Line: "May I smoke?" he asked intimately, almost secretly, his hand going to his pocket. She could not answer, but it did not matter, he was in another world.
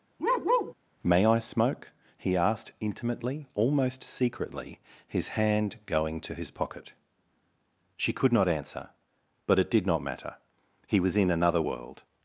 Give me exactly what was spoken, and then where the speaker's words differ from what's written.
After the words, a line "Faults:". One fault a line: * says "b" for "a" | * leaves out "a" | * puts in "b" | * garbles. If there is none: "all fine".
"May I smoke?" he asked intimately, almost secretly, his hand going to his pocket. She could not answer, but it did not matter, he was in another world.
Faults:
all fine